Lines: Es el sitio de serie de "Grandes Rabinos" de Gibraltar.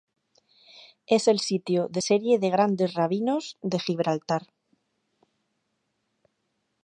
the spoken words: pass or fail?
pass